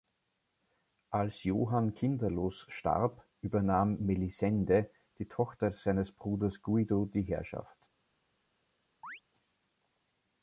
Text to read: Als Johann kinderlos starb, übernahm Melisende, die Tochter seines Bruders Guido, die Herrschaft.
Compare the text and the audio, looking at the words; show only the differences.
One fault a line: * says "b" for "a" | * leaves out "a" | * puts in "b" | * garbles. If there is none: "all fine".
all fine